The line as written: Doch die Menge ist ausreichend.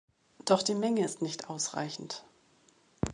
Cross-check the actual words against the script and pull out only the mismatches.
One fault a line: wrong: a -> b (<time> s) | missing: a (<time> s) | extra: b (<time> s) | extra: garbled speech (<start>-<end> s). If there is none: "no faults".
extra: nicht (1.2 s)